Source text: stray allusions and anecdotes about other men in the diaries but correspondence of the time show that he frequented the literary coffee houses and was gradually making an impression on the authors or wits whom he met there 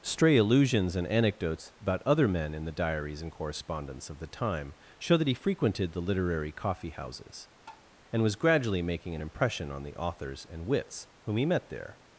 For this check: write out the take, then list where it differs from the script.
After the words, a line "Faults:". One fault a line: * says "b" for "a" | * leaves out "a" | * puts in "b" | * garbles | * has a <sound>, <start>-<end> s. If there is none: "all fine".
stray allusions and anecdotes about other men in the diaries and correspondence of the time show that he frequented the literary coffee houses and was gradually making an impression on the authors and wits whom he met there
Faults:
* says "and" for "but"
* has a tap, 7.7-7.9 s
* says "and" for "or"